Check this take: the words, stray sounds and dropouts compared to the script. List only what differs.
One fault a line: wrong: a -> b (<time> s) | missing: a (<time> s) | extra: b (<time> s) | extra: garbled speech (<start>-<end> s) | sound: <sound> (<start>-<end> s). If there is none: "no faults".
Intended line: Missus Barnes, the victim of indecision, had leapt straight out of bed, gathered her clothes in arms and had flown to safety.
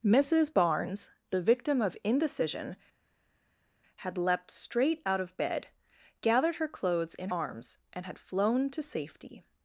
no faults